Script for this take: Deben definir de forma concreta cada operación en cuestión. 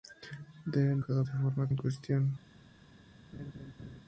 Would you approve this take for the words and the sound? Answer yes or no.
no